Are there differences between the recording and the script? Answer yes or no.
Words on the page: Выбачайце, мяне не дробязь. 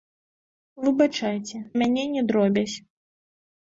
no